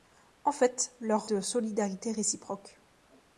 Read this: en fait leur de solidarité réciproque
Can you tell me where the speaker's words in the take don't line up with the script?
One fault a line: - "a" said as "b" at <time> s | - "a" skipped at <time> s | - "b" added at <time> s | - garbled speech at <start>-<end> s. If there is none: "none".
none